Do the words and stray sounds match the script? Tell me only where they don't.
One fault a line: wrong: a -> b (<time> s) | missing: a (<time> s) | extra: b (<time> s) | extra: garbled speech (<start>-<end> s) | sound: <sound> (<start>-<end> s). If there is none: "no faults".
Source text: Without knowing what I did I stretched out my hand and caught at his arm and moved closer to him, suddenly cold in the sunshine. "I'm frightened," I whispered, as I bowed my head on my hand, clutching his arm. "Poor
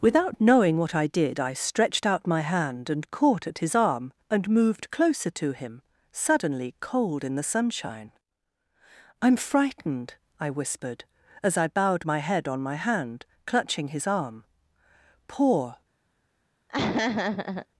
sound: laugh (16.7-17.7 s)